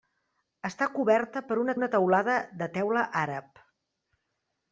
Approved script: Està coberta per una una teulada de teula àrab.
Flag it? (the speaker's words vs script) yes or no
no